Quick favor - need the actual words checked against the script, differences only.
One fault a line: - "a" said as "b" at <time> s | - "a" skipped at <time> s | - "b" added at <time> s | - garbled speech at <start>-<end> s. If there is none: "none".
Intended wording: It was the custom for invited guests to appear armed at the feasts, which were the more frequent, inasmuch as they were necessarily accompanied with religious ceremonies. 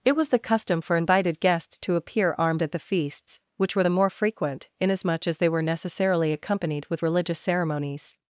none